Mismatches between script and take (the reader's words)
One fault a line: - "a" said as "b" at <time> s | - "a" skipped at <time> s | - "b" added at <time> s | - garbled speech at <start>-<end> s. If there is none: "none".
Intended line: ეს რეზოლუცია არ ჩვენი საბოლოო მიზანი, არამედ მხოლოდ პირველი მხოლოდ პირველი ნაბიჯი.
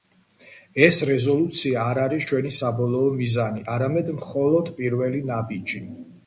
- "არის" added at 2.0 s
- "მხოლოდ პირველი" skipped at 5.3 s